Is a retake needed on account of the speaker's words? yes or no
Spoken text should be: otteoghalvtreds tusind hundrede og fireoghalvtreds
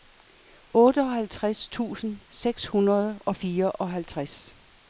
yes